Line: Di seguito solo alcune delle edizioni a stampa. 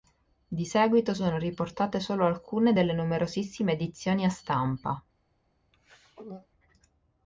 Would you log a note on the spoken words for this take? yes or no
yes